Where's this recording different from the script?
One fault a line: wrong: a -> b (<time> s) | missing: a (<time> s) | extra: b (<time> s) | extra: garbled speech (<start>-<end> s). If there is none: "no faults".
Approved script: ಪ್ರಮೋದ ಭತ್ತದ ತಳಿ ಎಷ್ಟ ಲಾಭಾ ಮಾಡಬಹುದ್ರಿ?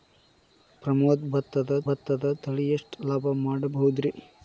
extra: ಭತ್ತದ (1.8 s)